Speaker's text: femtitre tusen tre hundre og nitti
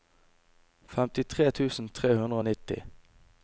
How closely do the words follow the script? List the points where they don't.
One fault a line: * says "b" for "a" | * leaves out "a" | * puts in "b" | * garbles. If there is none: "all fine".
all fine